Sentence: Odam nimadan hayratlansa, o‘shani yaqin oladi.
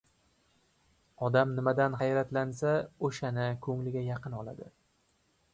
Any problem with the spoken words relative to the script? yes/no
yes